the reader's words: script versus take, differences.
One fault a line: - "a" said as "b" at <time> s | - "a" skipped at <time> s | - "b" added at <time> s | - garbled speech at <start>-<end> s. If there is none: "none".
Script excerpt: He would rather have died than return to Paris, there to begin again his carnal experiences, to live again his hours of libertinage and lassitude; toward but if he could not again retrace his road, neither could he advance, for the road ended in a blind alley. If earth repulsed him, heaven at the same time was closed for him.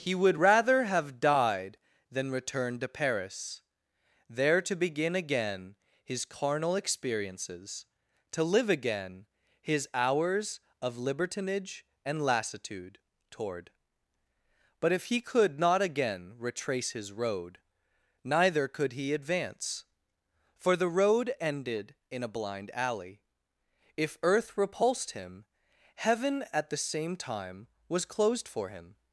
none